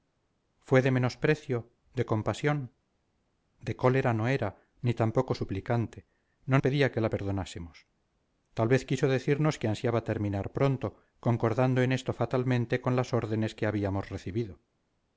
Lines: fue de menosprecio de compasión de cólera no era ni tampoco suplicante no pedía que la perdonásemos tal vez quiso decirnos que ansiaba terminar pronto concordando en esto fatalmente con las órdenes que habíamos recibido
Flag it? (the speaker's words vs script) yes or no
no